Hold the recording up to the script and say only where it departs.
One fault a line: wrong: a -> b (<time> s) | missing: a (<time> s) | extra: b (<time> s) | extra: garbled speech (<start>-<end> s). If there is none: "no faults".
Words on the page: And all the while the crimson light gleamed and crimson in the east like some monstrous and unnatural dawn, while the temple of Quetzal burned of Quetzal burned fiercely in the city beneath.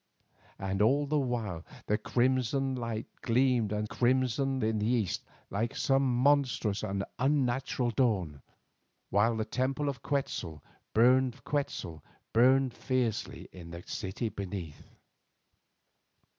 no faults